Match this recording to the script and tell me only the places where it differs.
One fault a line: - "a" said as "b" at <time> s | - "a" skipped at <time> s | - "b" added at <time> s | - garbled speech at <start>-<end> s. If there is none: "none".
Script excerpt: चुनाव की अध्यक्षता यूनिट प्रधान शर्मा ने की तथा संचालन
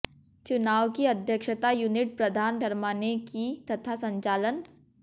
none